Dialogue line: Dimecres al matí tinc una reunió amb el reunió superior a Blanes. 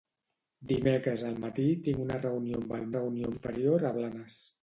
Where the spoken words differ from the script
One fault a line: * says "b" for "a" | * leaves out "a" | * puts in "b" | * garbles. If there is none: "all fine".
all fine